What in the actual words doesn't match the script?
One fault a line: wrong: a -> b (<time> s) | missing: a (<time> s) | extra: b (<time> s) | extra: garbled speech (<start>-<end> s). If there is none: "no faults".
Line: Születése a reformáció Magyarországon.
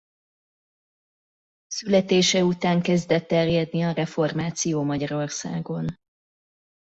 extra: után kezdett terjedni (2.4 s)